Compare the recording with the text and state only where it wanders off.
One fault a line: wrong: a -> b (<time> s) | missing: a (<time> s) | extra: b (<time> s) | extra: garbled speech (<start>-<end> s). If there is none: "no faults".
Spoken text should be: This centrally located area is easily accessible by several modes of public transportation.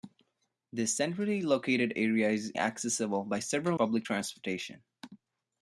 missing: easily (2.5 s)
missing: modes of (3.8 s)